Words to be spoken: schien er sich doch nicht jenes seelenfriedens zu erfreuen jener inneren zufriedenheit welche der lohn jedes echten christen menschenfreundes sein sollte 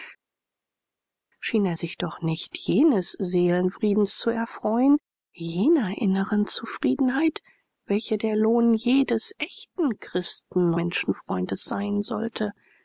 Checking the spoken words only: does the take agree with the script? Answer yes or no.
yes